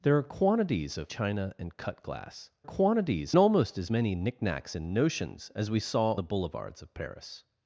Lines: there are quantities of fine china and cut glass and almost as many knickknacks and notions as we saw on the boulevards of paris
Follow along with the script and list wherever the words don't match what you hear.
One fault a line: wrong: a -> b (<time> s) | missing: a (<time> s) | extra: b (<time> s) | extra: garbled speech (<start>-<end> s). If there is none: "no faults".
missing: fine (1.1 s)
wrong: and -> quantities (2.6 s)
missing: on (6.2 s)